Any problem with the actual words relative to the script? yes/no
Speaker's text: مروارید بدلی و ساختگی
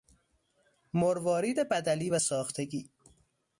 no